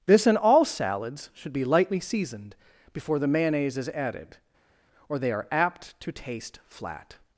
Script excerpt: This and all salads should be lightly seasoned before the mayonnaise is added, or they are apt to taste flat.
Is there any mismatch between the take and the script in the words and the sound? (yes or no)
no